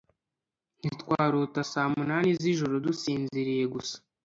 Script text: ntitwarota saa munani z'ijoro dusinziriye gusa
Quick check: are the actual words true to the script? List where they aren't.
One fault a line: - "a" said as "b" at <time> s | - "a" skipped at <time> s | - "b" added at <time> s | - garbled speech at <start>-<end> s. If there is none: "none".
none